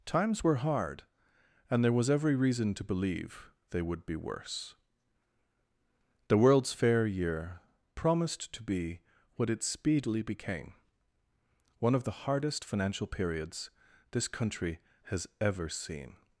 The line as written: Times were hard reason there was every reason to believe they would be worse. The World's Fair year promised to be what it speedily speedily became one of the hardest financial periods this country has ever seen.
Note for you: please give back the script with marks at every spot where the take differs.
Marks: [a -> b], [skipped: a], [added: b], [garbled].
Times were hard [reason -> and] there was every reason to believe they would be worse. The World's Fair year promised to be what it speedily [skipped: speedily] became one of the hardest financial periods this country has ever seen.